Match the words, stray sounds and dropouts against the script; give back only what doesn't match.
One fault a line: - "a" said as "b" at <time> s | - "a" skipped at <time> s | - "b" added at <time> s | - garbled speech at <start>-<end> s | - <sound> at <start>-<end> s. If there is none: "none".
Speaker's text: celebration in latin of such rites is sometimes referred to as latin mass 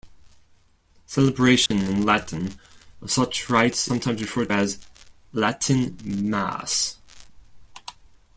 - dropout at 1.7-1.7 s
- "is" skipped at 3.9 s
- "to" skipped at 4.5 s